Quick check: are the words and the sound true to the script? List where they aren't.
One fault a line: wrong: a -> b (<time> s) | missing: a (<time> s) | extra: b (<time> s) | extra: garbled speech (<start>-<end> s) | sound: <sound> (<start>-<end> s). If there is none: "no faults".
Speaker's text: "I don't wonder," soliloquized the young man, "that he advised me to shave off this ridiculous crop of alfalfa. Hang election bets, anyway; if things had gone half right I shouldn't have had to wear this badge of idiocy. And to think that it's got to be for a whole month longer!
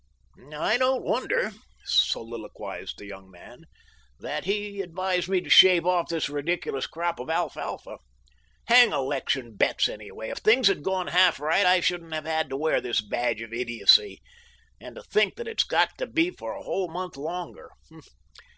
no faults